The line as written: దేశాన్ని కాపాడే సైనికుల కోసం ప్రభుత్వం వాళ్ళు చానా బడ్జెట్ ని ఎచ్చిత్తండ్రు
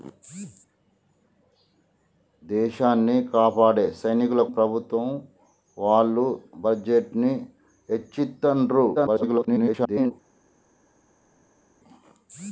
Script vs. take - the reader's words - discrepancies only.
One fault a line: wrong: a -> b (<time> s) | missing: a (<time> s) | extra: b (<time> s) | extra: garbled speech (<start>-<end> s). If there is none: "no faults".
missing: కోసం (4.4 s)
missing: చానా (6.3 s)
extra: garbled speech (8.9-10.1 s)